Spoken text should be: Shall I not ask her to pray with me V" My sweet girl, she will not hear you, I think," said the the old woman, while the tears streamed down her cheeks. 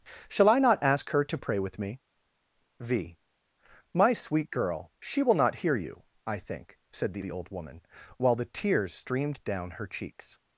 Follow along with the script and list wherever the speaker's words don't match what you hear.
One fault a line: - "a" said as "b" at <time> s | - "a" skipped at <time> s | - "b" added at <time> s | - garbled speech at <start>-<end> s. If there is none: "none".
none